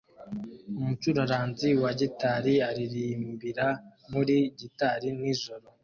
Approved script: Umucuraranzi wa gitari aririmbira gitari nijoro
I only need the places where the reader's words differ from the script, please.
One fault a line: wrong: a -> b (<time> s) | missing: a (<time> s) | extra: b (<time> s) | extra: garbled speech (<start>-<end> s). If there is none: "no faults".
extra: muri (4.1 s)